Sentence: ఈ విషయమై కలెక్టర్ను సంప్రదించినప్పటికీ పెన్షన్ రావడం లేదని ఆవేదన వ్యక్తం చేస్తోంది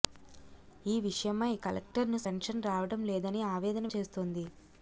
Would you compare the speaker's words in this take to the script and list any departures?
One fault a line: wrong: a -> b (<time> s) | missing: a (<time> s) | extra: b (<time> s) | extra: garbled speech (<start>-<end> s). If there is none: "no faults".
missing: సంప్రదించినప్పటికీ (2.2 s)
missing: వ్యక్తం (3.9 s)